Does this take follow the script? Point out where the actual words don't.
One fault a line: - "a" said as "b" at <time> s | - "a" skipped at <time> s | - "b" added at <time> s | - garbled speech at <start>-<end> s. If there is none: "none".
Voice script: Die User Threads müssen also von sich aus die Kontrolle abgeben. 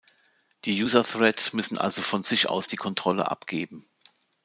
none